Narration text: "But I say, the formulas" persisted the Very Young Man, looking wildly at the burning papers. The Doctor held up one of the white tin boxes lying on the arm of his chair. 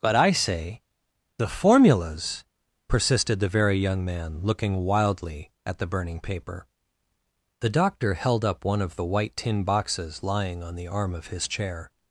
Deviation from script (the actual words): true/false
true